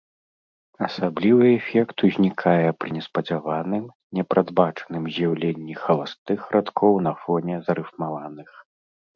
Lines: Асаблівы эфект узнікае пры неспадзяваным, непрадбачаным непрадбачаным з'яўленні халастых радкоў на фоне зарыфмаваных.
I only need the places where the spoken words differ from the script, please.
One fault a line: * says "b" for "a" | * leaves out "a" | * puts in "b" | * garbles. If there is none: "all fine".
* leaves out "непрадбачаным"